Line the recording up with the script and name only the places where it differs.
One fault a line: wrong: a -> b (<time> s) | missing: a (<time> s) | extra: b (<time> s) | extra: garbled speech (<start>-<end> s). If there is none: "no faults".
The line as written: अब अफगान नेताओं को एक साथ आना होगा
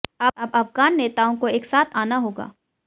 no faults